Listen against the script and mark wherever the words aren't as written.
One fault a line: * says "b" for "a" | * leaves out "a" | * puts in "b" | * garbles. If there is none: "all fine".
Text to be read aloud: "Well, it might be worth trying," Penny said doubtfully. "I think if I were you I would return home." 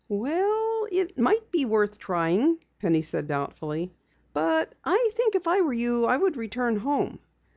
* puts in "But"